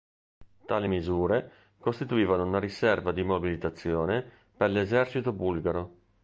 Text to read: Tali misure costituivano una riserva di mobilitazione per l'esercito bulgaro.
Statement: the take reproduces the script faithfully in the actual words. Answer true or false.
true